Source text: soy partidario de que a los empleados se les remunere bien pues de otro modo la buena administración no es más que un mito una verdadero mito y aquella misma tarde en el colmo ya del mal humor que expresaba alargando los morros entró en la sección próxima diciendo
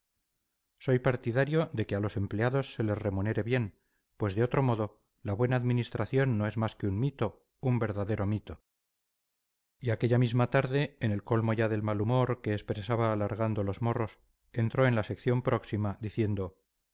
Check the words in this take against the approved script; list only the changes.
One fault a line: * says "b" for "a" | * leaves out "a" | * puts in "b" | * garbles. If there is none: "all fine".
* says "un" for "una"